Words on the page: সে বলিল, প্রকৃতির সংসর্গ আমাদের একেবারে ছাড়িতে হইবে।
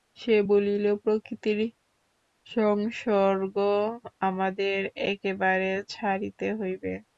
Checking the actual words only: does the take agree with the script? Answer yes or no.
yes